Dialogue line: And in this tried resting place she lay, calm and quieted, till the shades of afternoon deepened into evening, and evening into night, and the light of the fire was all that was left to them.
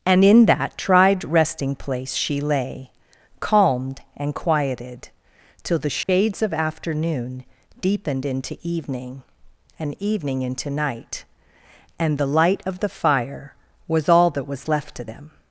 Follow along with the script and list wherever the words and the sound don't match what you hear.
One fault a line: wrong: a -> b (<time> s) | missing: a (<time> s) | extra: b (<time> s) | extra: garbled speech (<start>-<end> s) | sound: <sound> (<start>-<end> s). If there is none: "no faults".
wrong: this -> that (0.5 s)
wrong: calm -> calmed (3.4 s)
sound: dropout (6.0-6.1 s)